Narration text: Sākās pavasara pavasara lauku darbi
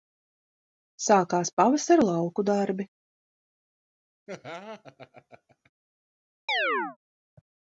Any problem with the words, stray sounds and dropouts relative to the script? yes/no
yes